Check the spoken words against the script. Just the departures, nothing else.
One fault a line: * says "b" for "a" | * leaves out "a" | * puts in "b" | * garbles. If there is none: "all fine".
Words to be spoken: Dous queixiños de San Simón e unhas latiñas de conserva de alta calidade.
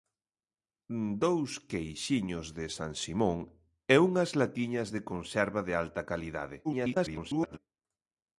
* garbles